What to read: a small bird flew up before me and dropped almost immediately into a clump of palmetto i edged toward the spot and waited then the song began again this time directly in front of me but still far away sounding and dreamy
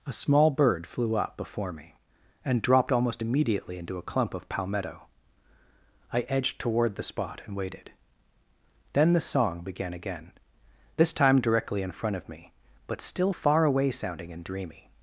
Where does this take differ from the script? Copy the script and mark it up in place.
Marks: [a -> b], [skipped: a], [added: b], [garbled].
a small bird flew up before me and dropped almost immediately into a clump of palmetto i edged toward the spot and waited then the song began again this time directly in front of me but still far away sounding and dreamy